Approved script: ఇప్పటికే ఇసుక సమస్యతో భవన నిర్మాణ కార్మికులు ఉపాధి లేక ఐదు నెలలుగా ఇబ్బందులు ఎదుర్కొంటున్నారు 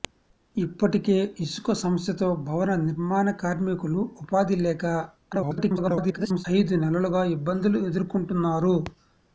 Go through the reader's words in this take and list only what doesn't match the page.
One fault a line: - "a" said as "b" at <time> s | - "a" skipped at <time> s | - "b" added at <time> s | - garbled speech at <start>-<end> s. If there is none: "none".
- garbled speech at 5.3-6.5 s